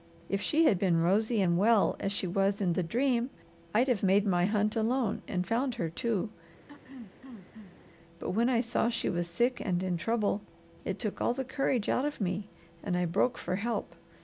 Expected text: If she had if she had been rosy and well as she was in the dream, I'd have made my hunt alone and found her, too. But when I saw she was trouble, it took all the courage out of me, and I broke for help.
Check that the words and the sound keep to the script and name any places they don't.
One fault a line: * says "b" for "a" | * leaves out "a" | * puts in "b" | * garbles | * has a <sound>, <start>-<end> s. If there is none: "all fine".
* leaves out "if she had"
* has a throat clearing, 6.7-7.8 s
* puts in "sick and in"